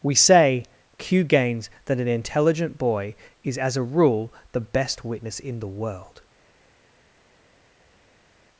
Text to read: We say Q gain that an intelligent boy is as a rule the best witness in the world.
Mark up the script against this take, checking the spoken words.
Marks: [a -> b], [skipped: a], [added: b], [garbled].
We say Q [gain -> gains] that an intelligent boy is as a rule the best witness in the world.